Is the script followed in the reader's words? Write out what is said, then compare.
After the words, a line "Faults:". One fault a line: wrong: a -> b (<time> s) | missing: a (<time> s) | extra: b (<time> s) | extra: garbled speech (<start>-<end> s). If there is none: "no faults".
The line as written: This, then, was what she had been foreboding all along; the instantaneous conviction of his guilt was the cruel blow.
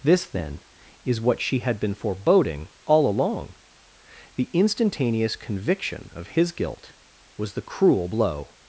This, then, is what she had been foreboding all along; the instantaneous conviction of his guilt was the cruel blow.
Faults:
wrong: was -> is (1.0 s)